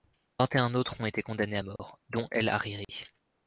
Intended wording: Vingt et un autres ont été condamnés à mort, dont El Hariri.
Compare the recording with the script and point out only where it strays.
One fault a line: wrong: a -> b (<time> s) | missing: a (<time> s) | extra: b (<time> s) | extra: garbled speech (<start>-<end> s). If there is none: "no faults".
no faults